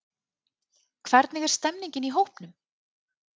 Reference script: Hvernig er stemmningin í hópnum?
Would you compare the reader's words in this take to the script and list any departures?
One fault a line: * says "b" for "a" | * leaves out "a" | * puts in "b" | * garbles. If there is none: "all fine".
all fine